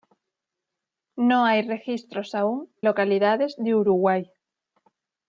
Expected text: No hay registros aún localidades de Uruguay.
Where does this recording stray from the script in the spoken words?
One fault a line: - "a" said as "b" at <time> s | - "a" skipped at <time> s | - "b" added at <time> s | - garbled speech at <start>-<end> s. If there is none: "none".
none